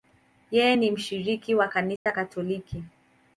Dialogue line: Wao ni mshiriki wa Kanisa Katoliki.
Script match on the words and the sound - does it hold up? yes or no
no